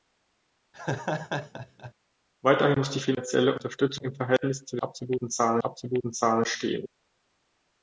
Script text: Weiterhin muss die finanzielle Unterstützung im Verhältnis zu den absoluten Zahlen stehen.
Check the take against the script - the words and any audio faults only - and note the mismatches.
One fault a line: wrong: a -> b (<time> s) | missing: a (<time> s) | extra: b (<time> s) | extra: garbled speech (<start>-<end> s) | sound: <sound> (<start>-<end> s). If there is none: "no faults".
sound: laugh (0.7-1.9 s)
extra: absoluten Zahlen (5.6 s)